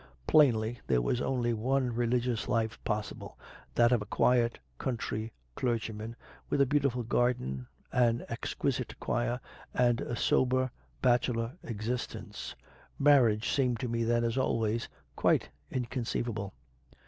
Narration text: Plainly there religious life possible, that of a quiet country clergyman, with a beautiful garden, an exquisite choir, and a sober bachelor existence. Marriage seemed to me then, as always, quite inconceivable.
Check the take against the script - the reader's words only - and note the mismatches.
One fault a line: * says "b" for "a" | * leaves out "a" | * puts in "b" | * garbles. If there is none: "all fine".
* puts in "was only one"